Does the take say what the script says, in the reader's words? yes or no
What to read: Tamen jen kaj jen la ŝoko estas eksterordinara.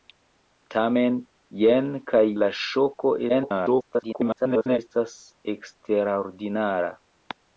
no